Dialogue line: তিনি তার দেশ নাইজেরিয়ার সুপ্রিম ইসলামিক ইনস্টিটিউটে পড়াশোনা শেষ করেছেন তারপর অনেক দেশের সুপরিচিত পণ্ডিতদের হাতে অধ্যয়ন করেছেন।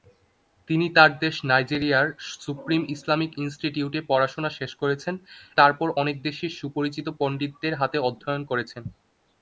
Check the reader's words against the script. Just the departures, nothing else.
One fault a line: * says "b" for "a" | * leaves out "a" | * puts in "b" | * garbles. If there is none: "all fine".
all fine